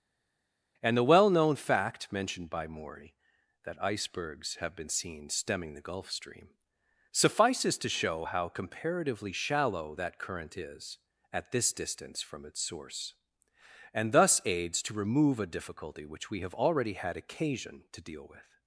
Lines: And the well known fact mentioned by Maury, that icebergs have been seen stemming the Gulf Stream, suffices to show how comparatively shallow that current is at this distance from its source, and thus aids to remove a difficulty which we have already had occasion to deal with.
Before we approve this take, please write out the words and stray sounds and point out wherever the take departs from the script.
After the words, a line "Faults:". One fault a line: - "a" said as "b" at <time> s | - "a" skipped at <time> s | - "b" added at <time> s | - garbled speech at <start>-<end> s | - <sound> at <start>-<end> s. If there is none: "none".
And the well known fact mentioned by Maury, that icebergs have been seen stemming the Gulf Stream, suffices to show how comparatively shallow that current is at this distance from its source, and thus aids to remove a difficulty which we have already had occasion to deal with.
Faults:
none